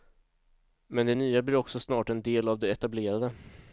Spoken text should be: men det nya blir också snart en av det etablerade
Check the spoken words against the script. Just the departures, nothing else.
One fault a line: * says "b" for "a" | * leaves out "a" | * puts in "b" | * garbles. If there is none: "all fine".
* puts in "del"